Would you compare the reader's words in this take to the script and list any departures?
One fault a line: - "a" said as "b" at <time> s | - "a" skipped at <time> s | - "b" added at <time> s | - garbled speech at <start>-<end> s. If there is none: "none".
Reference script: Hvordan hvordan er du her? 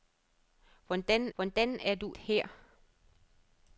none